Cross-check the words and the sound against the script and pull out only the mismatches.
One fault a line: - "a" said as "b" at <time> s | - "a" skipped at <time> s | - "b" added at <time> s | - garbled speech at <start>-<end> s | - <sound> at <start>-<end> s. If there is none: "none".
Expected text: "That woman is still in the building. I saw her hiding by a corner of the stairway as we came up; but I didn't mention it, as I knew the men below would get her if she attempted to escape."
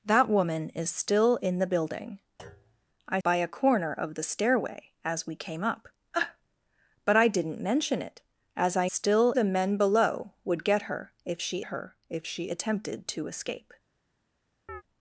- thud at 2.4-2.9 s
- "saw her hiding" skipped at 3.2 s
- "knew" said as "still" at 8.8 s
- "her if she" added at 11.6 s
- chirp at 14.7-14.8 s